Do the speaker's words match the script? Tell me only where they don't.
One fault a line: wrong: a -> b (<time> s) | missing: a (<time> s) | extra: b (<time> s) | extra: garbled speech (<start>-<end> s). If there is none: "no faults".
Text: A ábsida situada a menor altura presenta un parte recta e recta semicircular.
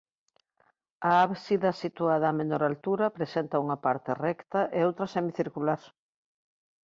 wrong: un -> unha (3.6 s)
wrong: recta -> outra (4.9 s)